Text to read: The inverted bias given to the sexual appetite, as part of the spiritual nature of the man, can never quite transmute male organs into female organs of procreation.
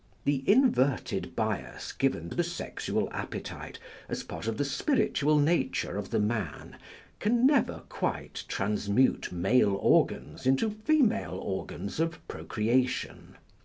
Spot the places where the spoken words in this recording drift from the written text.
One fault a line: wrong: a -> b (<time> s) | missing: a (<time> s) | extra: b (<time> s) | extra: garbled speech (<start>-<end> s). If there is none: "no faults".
no faults